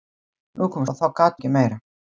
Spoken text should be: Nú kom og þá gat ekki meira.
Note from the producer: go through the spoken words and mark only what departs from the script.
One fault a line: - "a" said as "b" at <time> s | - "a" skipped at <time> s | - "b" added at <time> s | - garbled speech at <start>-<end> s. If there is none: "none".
none